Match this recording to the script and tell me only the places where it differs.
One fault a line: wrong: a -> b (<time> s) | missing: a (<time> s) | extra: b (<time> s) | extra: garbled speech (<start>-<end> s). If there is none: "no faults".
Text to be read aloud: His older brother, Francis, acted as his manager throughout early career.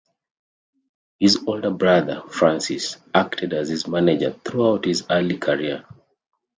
extra: his (4.8 s)